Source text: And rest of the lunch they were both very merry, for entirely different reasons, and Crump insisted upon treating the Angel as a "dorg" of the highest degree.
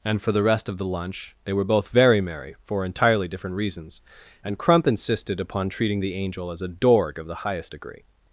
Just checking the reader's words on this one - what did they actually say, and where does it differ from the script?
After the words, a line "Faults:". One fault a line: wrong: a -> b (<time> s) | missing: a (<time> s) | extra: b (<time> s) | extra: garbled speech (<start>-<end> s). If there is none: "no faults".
And for the rest of the lunch they were both very merry, for entirely different reasons, and Crump insisted upon treating the Angel as a "dorg" of the highest degree.
Faults:
extra: for the (0.2 s)